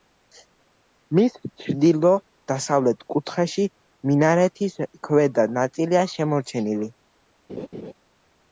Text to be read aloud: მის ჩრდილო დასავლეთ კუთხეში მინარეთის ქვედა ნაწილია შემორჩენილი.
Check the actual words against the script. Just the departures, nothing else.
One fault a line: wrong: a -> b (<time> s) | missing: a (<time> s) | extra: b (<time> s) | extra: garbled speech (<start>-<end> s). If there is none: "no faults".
no faults